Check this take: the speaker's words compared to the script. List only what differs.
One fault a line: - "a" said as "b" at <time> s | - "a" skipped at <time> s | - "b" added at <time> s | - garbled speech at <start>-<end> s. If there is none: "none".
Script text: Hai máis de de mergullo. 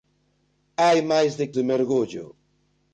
none